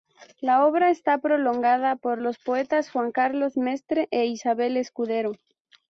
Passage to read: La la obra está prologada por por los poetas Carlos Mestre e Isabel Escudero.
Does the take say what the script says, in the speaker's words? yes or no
no